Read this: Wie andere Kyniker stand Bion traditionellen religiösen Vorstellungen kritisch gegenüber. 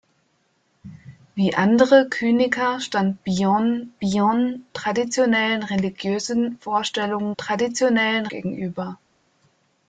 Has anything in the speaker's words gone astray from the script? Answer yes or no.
yes